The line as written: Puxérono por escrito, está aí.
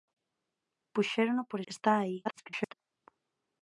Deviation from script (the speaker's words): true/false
true